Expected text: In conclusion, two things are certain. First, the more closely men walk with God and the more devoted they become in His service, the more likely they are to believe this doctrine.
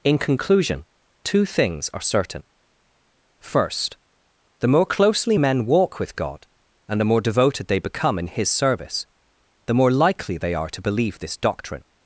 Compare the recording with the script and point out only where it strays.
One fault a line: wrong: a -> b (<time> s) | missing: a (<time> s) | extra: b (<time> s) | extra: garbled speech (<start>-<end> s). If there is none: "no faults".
no faults